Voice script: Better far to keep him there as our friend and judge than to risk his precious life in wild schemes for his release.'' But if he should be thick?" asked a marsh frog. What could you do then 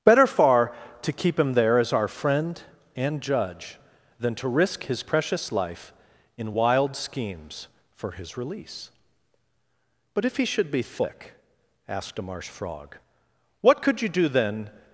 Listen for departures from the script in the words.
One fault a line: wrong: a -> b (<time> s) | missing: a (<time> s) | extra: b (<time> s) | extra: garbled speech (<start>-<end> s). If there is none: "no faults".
no faults